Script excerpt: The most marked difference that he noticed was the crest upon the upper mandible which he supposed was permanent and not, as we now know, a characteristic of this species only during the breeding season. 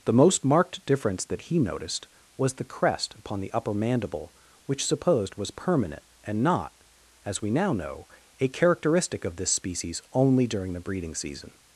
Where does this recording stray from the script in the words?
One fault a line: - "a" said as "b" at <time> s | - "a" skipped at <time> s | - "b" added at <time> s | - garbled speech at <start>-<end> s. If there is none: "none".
- "he" skipped at 4.8 s